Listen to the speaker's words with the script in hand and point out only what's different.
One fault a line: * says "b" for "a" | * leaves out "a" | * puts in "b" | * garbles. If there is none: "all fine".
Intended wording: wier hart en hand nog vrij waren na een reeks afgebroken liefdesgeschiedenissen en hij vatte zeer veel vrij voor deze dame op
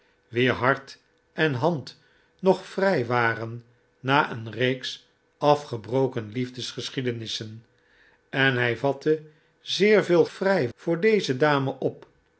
all fine